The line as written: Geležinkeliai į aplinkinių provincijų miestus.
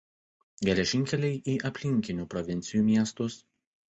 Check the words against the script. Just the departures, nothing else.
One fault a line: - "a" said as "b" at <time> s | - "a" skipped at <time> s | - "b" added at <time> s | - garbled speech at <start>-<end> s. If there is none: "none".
none